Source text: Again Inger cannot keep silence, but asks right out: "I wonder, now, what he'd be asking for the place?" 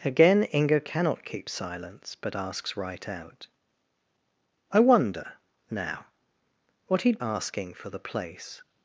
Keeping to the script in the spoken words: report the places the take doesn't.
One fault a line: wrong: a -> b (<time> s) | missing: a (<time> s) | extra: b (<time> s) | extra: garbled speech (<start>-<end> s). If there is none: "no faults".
missing: be (7.2 s)